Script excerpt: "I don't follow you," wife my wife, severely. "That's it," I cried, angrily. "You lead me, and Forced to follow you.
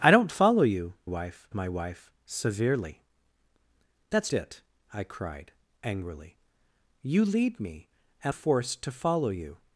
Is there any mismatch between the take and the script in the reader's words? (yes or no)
no